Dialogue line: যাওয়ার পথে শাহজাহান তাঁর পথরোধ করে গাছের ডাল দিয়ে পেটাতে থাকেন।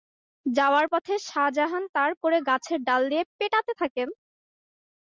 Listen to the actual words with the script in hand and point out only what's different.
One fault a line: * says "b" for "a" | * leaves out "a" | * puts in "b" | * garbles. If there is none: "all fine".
* leaves out "পথরোধ"